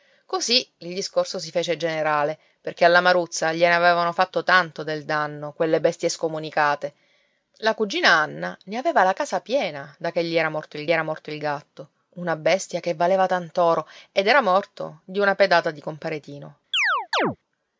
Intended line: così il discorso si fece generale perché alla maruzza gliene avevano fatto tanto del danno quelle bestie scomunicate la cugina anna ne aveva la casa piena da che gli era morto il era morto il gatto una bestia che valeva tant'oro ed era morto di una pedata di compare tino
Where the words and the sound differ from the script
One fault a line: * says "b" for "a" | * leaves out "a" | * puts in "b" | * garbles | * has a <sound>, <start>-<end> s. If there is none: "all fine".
* has a chirp, 16.7-17.4 s